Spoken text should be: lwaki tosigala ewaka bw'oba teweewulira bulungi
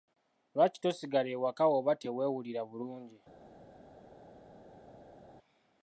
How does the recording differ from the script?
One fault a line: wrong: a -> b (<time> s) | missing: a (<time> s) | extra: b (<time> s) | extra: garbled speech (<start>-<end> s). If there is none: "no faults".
no faults